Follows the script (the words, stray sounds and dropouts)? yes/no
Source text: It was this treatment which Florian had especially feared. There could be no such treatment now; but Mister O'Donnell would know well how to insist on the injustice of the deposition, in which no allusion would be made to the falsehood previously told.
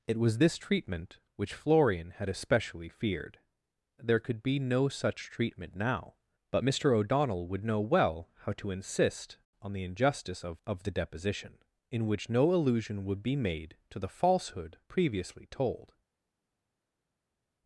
no